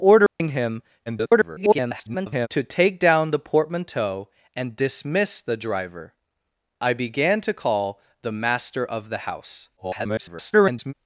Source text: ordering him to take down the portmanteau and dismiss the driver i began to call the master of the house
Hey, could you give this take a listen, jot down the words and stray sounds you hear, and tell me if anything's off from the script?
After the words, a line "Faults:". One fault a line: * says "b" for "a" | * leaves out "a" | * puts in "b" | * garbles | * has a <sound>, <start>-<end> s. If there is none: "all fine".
ordering him [garbled] to take down the portmanteau and dismiss the driver i began to call the master of the house [garbled]
Faults:
* has a dropout, 0.3-0.4 s
* garbles
* garbles